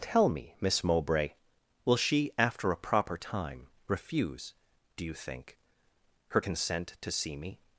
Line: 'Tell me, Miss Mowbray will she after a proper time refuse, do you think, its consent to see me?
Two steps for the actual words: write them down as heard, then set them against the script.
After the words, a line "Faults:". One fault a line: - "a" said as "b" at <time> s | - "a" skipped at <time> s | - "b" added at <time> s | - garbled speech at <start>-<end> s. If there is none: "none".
'Tell me, Miss Mowbray will she after a proper time refuse, do you think, her consent to see me?
Faults:
- "its" said as "her" at 6.3 s